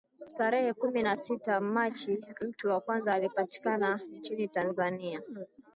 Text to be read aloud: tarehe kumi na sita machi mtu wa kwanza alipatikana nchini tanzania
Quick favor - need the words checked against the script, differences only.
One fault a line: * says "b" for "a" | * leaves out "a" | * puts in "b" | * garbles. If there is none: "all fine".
all fine